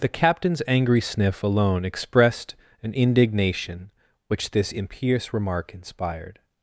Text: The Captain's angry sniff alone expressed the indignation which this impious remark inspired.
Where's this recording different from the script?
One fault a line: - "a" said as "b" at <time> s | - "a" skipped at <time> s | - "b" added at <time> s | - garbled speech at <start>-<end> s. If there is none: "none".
- "the" said as "an" at 2.8 s